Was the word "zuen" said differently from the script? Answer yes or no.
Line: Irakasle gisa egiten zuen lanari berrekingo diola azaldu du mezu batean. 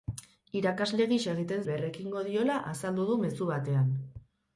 yes